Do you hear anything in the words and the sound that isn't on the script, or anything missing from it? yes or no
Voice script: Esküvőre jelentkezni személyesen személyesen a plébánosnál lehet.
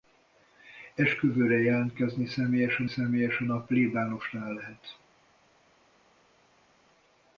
no